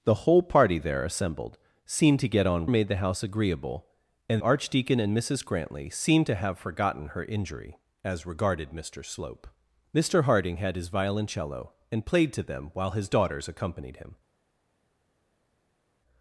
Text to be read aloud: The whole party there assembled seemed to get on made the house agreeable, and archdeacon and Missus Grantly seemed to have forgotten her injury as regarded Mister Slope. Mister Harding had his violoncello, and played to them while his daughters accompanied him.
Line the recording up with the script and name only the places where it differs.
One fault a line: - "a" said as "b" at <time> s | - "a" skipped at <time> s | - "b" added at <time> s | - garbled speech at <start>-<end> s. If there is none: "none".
none